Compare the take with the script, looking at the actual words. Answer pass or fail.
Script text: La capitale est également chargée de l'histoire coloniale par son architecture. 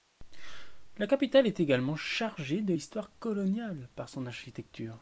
pass